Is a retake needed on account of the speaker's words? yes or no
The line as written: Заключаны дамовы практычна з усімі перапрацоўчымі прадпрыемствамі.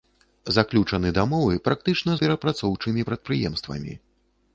yes